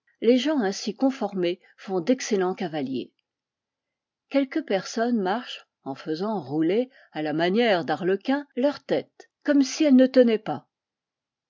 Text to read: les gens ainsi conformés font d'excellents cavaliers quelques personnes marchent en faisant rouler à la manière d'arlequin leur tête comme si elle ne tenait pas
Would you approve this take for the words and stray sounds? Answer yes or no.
yes